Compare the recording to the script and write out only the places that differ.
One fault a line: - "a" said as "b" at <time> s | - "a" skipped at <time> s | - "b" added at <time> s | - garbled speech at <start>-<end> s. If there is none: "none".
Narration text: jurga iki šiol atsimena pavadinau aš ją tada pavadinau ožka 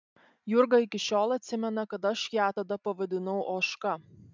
- "pavadinau" said as "kad" at 1.9 s